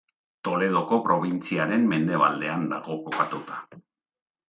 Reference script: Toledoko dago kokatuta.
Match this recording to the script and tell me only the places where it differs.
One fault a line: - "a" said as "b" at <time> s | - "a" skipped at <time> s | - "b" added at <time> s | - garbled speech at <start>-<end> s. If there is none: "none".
- "probintziaren mendebaldean" added at 1.1 s